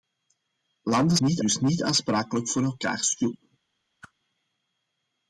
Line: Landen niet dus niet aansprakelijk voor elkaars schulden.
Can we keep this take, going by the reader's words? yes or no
yes